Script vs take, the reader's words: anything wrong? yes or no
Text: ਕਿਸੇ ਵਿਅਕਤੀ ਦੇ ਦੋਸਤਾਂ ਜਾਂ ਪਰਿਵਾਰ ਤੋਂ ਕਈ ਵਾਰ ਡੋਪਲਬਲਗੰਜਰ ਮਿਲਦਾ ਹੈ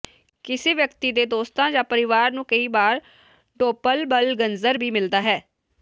yes